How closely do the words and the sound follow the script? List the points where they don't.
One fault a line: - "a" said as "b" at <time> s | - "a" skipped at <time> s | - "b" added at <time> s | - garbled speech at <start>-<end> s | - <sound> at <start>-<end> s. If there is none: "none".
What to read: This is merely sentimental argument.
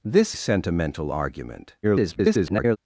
- "is merely" skipped at 0.3 s
- garbled speech at 1.8-2.8 s